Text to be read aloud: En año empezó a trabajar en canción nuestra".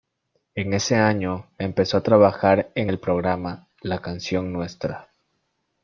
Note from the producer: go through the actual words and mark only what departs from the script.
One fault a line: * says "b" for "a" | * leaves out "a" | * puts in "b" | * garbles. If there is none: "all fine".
* puts in "ese"
* puts in "el programa La"